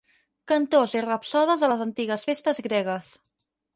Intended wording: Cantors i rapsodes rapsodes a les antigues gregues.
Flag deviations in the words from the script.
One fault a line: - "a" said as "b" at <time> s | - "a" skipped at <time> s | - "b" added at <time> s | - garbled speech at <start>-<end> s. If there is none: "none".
- "rapsodes" skipped at 1.6 s
- "festes" added at 2.3 s